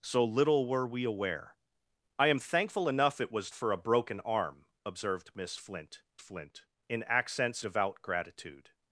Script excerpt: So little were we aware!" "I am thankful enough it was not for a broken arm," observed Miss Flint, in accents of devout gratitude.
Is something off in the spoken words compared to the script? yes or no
yes